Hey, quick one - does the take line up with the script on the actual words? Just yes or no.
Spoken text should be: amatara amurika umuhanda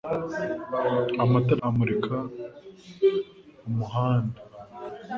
yes